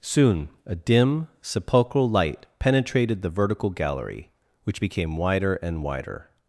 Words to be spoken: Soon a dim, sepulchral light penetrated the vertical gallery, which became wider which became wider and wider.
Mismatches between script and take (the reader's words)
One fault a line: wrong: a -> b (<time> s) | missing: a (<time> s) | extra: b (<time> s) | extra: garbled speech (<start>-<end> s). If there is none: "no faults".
missing: which became wider (5.5 s)